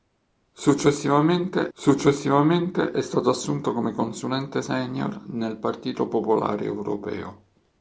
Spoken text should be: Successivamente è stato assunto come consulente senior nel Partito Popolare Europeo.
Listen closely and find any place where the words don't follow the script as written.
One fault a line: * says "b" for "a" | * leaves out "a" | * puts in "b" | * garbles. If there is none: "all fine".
* puts in "successivamente"